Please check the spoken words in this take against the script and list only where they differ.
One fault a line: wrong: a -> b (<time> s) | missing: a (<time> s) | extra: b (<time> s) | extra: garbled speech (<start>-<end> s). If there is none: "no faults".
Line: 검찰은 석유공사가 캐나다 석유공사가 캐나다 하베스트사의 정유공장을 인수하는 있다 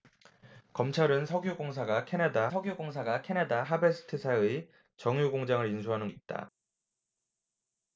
no faults